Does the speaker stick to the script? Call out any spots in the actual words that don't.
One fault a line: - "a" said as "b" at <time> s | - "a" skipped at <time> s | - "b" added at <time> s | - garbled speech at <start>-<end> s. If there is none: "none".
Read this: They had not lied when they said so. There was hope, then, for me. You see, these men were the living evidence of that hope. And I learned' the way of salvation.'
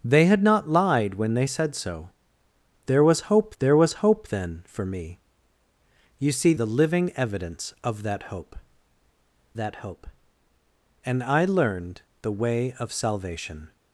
- "there was hope" added at 3.6 s
- "these men were" skipped at 6.5 s
- "that hope" added at 9.6 s